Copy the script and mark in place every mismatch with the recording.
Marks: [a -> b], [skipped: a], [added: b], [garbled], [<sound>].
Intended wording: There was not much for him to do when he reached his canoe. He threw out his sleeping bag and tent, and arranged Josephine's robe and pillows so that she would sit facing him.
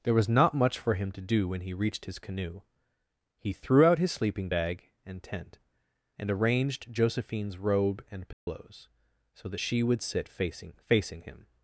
There was not much for him to do when he reached his canoe. He threw out his sleeping bag and tent, and arranged Josephine's robe and pillows [dropout] so that she would sit facing [added: facing] him.